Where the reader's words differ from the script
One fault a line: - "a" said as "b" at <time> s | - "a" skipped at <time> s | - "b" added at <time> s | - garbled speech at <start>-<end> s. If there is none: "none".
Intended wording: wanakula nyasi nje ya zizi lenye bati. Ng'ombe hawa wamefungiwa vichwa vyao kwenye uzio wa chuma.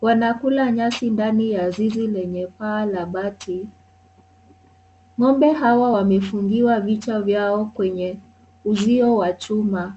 - "nje" said as "ndani" at 1.1 s
- "paa la" added at 2.5 s